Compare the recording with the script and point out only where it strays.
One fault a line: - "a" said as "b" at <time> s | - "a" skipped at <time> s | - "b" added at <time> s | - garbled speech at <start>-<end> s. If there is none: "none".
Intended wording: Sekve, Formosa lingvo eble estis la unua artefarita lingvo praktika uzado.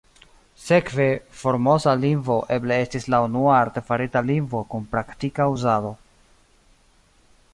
- "kun" added at 4.7 s